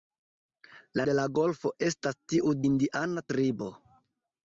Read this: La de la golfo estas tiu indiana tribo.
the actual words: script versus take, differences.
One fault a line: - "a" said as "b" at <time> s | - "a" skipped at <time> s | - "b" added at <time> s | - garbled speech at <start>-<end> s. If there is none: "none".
none